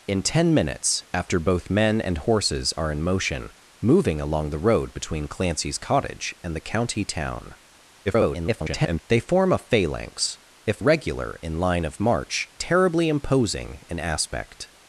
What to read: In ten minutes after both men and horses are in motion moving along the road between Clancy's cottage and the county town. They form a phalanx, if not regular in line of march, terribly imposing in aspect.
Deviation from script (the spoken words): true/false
true